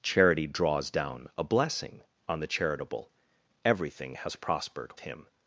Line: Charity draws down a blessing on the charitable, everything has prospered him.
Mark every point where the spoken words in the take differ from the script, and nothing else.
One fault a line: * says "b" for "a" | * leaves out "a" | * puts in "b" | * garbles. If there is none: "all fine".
all fine